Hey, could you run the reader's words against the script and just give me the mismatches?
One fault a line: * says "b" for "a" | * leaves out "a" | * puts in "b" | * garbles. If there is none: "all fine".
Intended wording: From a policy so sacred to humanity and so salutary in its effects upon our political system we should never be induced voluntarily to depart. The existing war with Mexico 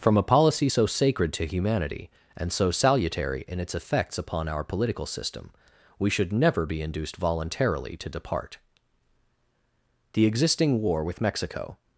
all fine